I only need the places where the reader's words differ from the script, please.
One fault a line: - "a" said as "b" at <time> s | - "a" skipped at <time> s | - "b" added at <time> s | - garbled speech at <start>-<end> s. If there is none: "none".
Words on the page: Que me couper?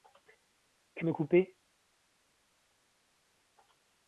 none